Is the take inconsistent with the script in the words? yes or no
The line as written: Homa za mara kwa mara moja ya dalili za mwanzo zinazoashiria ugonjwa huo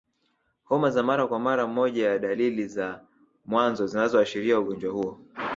no